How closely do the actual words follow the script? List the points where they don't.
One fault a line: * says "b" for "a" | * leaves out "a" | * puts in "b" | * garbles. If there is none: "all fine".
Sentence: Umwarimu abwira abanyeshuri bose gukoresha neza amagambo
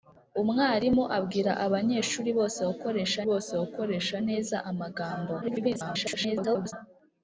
* puts in "bose gukoresha"
* garbles